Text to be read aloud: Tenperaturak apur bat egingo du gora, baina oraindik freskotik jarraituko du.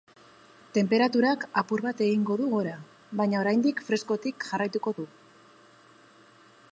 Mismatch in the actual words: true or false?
false